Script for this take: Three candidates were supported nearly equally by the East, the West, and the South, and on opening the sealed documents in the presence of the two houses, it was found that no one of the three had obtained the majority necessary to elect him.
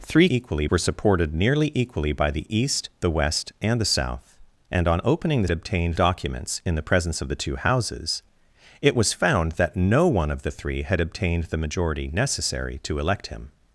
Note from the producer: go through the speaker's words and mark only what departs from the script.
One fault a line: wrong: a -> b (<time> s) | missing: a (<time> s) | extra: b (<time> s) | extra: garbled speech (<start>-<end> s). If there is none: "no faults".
wrong: candidates -> equally (0.3 s)
wrong: sealed -> obtained (5.5 s)